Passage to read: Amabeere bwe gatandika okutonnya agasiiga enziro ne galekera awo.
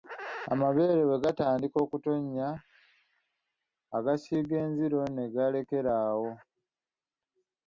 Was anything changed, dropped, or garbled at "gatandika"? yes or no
no